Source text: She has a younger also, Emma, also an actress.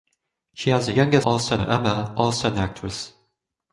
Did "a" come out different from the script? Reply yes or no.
no